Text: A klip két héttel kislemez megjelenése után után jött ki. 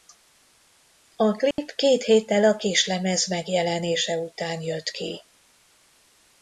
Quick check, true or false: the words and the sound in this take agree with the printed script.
false